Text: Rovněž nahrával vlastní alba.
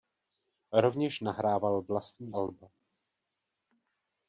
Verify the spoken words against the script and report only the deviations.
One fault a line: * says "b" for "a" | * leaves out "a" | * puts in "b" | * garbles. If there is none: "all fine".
all fine